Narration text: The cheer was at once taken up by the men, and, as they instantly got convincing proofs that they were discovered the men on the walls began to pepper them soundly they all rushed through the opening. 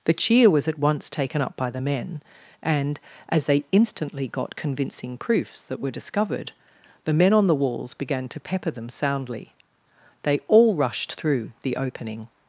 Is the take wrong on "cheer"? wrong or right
right